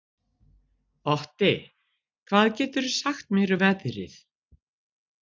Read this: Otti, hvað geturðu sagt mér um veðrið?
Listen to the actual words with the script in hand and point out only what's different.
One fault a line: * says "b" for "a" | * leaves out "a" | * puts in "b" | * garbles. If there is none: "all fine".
all fine